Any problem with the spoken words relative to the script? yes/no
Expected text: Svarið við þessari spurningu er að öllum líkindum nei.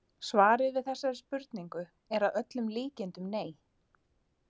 no